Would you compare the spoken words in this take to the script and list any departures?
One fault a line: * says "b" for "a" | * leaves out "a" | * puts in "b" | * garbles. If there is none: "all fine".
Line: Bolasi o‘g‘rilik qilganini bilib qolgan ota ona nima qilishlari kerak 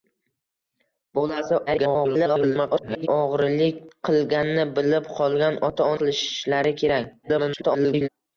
* garbles
* leaves out "ona nima"
* garbles